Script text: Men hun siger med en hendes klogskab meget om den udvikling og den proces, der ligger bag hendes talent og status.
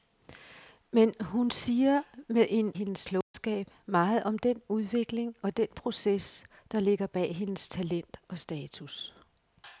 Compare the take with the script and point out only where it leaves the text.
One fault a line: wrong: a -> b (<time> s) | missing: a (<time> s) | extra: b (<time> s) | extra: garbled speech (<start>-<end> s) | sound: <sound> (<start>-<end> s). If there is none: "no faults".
sound: dropout (3.2-3.3 s)